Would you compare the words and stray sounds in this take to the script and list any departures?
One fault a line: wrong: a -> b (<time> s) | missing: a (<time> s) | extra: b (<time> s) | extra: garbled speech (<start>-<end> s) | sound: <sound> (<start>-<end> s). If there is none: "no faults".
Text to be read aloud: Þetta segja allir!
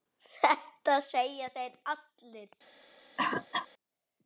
extra: þeir (1.6 s)
sound: cough (3.2-3.7 s)